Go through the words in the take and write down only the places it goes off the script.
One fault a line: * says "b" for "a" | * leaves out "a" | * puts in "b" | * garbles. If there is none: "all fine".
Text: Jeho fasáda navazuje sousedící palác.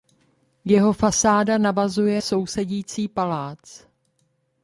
all fine